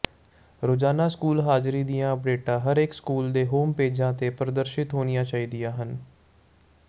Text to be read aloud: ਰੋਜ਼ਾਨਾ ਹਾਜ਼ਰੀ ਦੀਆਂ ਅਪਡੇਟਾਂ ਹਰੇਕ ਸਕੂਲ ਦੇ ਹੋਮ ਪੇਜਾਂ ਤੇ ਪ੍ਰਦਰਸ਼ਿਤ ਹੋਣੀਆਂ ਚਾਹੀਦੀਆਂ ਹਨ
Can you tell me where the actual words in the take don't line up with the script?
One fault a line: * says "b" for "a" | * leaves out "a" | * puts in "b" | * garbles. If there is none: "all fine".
* puts in "ਸਕੂਲ"